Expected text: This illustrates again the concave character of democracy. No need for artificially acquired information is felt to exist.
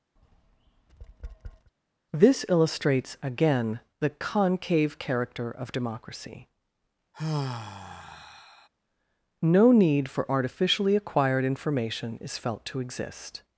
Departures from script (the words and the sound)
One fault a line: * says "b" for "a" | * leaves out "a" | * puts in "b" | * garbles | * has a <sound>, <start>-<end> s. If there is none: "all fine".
* has a tap, 0.2-1.7 s
* has a sigh, 7.1-8.7 s